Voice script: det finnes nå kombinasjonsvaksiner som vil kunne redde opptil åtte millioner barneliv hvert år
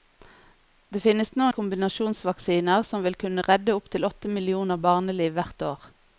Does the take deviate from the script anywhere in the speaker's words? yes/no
no